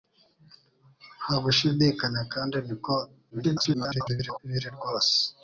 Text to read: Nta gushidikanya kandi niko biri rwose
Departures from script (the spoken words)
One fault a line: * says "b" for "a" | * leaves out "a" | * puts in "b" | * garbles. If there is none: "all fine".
* garbles